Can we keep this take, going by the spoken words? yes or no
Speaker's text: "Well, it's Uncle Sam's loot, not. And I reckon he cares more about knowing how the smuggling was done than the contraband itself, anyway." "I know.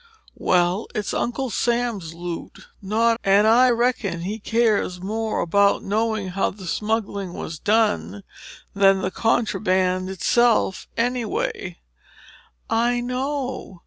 yes